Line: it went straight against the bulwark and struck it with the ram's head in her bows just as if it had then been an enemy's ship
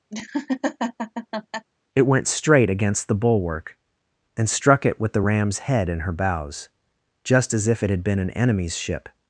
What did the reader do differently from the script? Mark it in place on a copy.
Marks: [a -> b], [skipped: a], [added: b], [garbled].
it went straight against the bulwark and struck it with the ram's head in her bows just as if it had [skipped: then] been an enemy's ship